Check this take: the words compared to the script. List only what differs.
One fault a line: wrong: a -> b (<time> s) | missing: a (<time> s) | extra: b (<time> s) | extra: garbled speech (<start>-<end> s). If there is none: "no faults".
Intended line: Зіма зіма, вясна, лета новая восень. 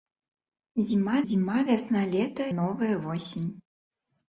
no faults